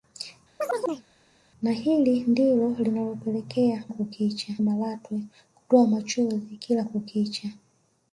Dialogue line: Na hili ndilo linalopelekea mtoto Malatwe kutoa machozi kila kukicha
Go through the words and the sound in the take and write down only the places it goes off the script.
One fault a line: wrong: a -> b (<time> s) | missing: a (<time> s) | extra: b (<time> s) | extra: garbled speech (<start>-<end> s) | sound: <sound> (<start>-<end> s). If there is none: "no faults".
sound: chirp (0.6-1.1 s)
wrong: mtoto -> kukicha (3.9 s)